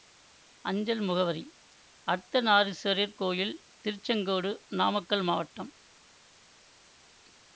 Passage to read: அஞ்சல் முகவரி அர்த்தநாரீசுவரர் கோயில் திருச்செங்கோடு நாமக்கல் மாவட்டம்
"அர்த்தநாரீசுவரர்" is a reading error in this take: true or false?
false